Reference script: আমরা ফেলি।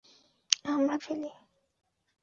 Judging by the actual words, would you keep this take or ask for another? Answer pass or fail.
pass